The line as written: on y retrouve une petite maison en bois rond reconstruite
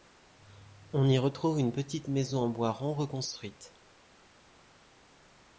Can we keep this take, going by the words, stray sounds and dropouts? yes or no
yes